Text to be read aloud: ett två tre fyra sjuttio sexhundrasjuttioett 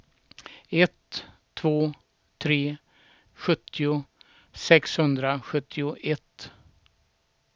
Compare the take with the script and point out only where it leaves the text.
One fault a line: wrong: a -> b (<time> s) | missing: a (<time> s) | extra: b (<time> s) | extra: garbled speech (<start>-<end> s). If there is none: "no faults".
missing: fyra (2.8 s)